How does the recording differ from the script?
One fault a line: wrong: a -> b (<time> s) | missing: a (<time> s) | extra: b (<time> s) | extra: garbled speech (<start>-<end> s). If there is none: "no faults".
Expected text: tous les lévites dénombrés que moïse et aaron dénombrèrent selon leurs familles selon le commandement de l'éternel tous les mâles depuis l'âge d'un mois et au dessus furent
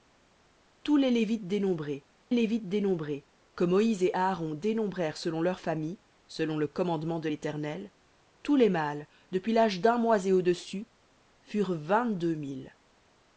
extra: lévites dénombrés (2.3 s)